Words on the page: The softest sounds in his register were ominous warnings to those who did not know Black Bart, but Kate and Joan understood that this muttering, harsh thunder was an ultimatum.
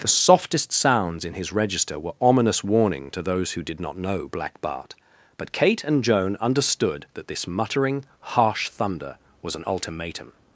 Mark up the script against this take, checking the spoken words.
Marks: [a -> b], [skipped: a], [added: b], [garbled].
The softest sounds in his register were ominous [warnings -> warning] to those who did not know Black Bart, but Kate and Joan understood that this muttering, harsh thunder was an ultimatum.